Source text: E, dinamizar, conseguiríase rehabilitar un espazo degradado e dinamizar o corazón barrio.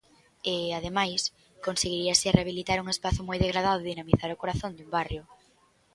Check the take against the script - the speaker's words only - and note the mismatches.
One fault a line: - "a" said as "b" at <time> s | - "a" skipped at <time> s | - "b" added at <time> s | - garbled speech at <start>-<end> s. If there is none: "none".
- "dinamizar" said as "ademais" at 0.8 s
- "moi" added at 3.3 s
- "dun" added at 4.7 s